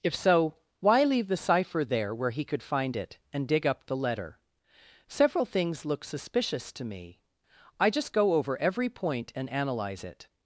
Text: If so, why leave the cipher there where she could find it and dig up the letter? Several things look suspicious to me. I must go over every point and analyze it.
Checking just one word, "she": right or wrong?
wrong